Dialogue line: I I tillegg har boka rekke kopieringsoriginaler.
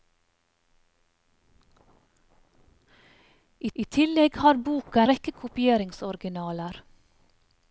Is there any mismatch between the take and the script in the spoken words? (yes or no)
no